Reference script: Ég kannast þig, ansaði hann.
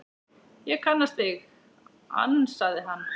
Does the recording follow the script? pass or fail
pass